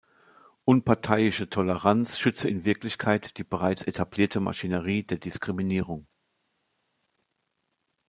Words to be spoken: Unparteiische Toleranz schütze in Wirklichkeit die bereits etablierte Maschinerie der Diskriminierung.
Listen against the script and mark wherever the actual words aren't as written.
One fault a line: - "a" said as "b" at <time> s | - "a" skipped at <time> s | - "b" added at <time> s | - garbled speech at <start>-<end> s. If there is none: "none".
none